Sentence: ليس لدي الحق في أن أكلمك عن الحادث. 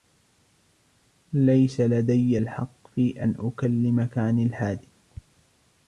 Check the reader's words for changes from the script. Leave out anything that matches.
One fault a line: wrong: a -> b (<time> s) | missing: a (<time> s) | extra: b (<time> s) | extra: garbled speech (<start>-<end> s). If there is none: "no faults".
no faults